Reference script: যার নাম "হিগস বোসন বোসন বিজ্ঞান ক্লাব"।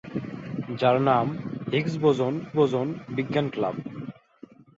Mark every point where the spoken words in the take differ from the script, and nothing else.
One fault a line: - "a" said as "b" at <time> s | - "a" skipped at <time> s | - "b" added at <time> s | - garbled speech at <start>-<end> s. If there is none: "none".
none